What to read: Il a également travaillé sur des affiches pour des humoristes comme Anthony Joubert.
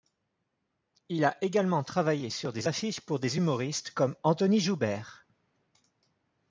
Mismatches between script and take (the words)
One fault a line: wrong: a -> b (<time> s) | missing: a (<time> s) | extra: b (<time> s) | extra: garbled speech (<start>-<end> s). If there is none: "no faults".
no faults